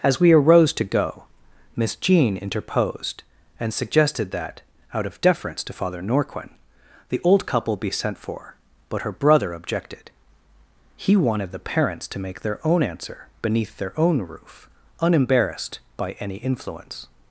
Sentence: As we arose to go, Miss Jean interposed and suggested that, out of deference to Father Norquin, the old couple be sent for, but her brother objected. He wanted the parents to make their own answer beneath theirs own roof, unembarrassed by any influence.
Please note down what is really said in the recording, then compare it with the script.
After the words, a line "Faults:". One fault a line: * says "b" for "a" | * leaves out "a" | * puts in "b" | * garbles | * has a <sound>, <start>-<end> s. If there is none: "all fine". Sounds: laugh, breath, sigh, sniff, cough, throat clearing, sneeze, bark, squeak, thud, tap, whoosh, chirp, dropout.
As we arose to go, Miss Jean interposed and suggested that, out of deference to Father Norquin, the old couple be sent for, but her brother objected. He wanted the parents to make their own answer beneath their own roof, unembarrassed by any influence.
Faults:
* says "their" for "theirs"